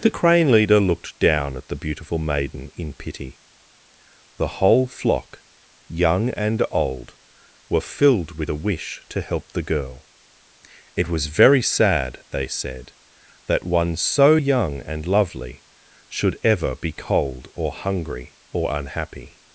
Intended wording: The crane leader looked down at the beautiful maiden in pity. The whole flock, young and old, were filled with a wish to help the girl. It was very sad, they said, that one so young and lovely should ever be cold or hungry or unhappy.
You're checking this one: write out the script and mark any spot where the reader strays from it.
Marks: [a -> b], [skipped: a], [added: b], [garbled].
The crane leader looked down at the beautiful maiden in pity. The whole flock, young and old, were filled with a wish to help the girl. It was very sad, they said, that one so young and lovely should ever be cold or hungry or unhappy.